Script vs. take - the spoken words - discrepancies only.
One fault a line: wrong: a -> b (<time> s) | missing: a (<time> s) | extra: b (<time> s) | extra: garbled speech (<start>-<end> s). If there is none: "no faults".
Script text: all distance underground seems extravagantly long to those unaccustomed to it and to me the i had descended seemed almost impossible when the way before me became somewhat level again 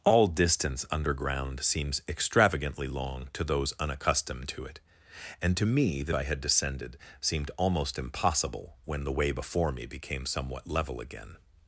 no faults